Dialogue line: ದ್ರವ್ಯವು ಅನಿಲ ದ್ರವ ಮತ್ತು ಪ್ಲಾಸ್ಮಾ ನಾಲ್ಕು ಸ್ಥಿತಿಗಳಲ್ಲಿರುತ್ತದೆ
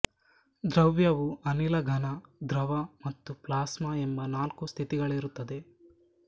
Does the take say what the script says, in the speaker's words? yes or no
no